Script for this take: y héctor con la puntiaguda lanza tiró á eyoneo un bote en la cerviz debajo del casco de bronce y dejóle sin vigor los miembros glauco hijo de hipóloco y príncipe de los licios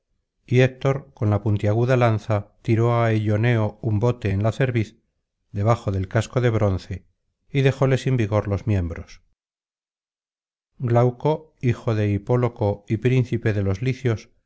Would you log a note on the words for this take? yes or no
no